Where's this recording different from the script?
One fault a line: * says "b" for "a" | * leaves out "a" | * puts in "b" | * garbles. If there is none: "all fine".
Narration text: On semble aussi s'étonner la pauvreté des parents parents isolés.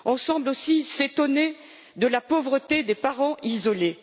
* puts in "de"
* leaves out "parents"